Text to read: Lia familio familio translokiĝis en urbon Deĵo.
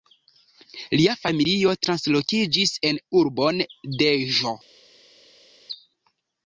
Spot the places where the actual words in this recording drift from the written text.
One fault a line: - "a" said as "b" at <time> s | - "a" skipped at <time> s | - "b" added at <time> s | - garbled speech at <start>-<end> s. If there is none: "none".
- "familio" skipped at 1.7 s